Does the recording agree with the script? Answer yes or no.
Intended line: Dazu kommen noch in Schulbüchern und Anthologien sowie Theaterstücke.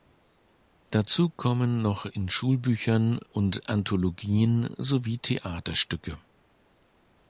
yes